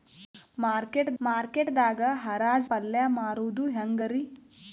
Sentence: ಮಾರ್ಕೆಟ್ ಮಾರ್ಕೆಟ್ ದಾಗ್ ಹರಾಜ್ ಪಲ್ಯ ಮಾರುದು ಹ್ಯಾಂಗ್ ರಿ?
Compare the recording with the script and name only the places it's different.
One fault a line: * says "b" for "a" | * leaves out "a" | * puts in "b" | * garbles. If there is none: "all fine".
all fine